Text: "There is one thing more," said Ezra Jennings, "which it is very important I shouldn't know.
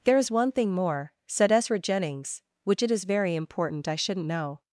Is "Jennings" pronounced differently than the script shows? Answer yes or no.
no